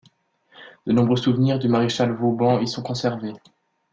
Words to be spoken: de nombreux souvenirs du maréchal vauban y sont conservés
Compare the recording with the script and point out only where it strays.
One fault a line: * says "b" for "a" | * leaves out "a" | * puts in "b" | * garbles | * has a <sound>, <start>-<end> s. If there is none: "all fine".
all fine